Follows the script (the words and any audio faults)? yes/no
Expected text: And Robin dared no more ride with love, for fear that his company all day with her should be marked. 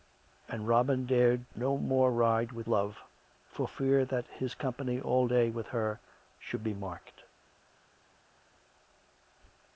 yes